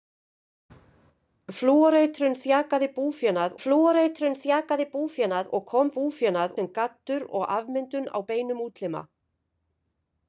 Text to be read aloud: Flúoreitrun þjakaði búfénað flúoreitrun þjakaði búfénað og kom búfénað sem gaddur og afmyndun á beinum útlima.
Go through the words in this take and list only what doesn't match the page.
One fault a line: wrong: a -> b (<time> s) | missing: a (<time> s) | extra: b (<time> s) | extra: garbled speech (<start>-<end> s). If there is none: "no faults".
no faults